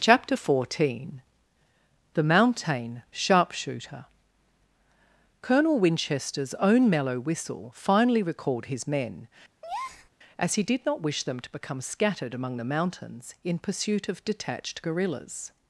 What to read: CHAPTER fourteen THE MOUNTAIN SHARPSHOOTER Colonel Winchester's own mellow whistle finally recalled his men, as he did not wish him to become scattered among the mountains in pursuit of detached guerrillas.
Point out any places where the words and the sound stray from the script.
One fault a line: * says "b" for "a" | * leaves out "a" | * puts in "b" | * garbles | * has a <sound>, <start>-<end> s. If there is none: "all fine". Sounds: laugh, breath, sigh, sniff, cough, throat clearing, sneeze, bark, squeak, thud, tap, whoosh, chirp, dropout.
* has a breath, 9.6-10.1 s
* says "them" for "him"